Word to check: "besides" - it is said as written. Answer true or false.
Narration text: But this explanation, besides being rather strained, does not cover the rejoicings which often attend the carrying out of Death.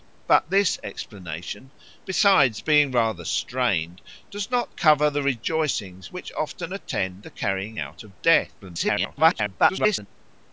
true